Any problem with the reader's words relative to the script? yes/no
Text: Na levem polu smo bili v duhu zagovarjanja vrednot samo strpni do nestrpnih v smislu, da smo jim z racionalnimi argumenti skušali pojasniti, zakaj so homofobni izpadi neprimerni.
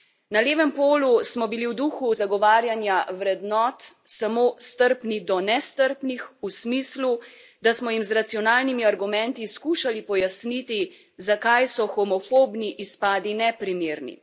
no